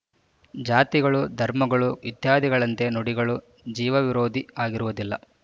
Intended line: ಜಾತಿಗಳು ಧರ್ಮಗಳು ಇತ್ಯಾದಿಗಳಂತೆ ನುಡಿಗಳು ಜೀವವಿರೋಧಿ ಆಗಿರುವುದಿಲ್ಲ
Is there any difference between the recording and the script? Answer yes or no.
no